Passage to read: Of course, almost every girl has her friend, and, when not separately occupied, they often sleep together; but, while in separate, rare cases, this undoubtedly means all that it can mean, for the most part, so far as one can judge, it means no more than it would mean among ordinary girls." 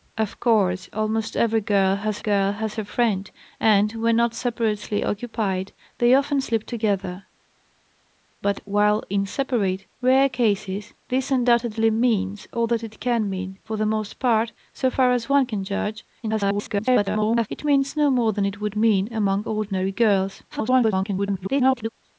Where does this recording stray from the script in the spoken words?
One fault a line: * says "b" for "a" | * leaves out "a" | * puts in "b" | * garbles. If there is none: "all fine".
* puts in "girl has"
* garbles
* garbles